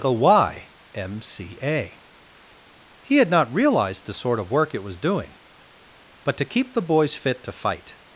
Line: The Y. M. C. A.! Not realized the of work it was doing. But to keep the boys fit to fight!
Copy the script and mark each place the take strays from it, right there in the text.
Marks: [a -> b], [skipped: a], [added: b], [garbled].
The Y. M. C. A.! [added: He had] Not realized the [added: sort] of work it was doing. But to keep the boys fit to fight!